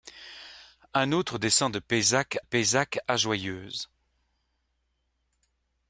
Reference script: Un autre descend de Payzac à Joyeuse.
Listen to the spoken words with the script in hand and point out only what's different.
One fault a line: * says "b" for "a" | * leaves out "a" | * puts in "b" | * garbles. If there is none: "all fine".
* puts in "Payzac"